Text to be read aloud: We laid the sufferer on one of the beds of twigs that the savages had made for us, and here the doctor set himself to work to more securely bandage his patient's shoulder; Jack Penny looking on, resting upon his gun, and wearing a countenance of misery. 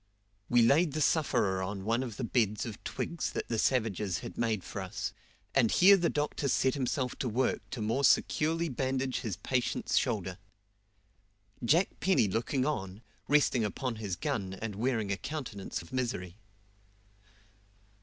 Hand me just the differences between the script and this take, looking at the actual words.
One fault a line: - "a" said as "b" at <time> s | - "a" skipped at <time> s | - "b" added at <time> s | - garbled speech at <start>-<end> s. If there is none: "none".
none